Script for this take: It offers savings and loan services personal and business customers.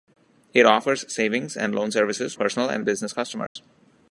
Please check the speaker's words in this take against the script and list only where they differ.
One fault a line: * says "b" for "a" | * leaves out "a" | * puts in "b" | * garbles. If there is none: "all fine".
all fine